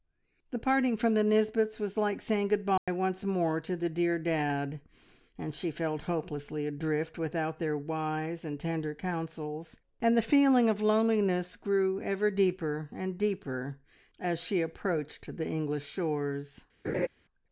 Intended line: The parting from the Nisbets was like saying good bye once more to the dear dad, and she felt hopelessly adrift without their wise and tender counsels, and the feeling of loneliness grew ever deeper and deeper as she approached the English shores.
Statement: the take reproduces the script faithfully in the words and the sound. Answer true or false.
false